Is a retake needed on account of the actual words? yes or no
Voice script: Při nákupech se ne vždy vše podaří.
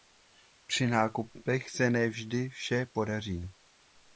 no